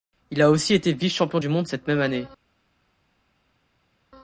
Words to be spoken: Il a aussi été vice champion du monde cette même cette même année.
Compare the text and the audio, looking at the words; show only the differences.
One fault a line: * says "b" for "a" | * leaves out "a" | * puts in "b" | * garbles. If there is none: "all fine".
* leaves out "cette même"